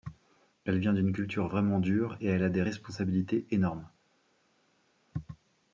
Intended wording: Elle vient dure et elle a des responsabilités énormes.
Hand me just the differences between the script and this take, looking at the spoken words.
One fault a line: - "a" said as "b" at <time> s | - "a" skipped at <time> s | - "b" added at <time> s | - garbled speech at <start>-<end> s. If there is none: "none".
- "d'une culture vraiment" added at 0.9 s